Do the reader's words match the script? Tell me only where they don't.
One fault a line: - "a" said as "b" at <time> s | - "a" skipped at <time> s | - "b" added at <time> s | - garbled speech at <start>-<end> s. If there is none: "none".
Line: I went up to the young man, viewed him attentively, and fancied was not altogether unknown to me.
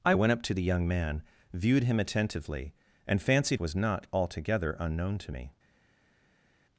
none